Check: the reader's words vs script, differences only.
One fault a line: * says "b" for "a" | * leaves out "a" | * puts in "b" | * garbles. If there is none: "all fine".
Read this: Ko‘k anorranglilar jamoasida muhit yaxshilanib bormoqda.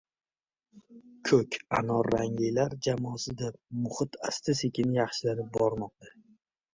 * puts in "asta sekin"